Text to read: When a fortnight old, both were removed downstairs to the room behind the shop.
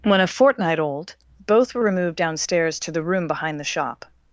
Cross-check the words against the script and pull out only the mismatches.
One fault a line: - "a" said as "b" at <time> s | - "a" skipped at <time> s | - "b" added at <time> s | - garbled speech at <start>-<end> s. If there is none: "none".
none